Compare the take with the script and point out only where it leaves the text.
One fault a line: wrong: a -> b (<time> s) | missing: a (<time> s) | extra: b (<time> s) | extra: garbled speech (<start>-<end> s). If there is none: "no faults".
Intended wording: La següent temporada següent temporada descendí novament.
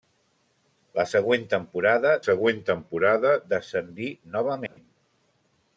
no faults